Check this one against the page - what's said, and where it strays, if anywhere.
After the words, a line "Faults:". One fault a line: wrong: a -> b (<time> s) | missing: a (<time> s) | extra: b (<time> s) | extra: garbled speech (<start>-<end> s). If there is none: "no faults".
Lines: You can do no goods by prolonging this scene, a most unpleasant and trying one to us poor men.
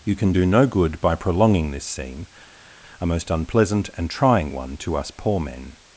You can do no good by prolonging this scene, a most unpleasant and trying one to us poor men.
Faults:
wrong: goods -> good (0.6 s)